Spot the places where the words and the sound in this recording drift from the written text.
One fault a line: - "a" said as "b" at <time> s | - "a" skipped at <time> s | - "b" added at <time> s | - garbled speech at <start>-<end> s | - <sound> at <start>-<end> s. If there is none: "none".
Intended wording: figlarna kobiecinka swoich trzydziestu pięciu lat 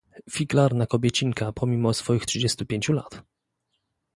- "pomimo" added at 1.5 s